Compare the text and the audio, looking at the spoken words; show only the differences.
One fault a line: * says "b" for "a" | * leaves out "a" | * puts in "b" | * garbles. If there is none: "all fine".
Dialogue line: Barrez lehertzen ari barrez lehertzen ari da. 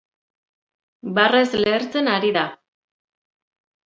* leaves out "barrez lehertzen ari"